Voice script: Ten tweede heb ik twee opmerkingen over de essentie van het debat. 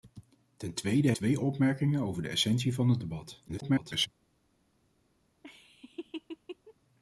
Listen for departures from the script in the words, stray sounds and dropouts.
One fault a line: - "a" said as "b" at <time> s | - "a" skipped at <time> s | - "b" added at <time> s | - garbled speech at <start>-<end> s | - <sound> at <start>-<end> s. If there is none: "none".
- "heb ik" skipped at 1.1 s
- garbled speech at 3.5-4.1 s
- laugh at 5.4-6.7 s